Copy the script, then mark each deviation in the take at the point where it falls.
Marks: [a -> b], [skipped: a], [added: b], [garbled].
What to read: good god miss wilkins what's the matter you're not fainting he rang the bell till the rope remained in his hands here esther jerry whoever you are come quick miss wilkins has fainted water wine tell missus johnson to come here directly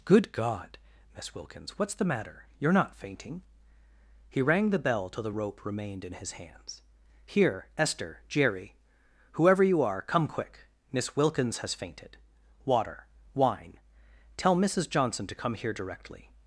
good god miss wilkins what's the matter you're not fainting he rang the bell till the rope remained in his hands here esther jerry whoever you are come quick miss wilkins has fainted water wine tell missus johnson to come here directly